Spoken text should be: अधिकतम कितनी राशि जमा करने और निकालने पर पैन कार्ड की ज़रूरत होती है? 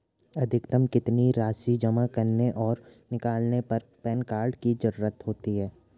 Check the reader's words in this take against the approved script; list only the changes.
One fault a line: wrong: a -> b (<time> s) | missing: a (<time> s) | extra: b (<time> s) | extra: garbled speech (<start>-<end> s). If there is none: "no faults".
no faults